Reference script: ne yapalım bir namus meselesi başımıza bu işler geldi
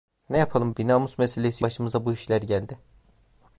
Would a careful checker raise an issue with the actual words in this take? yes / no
no